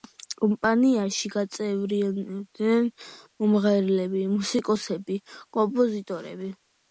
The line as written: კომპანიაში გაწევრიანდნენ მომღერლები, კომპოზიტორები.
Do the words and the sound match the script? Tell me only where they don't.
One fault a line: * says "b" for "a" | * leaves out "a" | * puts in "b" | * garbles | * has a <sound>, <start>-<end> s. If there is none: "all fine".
* puts in "მუსიკოსები"